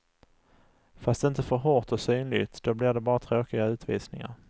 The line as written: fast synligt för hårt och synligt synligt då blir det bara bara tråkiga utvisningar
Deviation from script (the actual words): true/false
true